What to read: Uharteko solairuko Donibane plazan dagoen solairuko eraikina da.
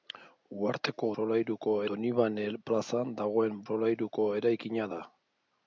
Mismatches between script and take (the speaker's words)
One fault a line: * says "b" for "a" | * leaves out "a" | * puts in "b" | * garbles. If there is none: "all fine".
all fine